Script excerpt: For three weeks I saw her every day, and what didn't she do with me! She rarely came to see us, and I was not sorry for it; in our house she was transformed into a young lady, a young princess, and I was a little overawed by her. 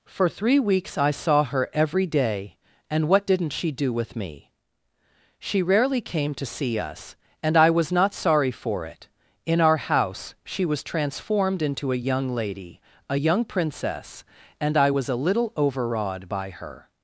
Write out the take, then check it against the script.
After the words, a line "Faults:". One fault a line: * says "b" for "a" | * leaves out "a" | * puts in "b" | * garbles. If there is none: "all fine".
For three weeks I saw her every day, and what didn't she do with me! She rarely came to see us, and I was not sorry for it; in our house she was transformed into a young lady, a young princess, and I was a little overawed by her.
Faults:
all fine